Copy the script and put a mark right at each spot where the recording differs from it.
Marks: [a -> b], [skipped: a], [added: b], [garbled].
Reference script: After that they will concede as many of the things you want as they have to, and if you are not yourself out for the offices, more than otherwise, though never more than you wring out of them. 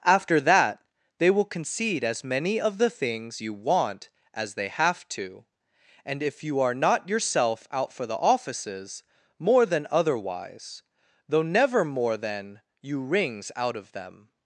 After that they will concede as many of the things you want as they have to, and if you are not yourself out for the offices, more than otherwise, though never more than you [wring -> wrings] out of them.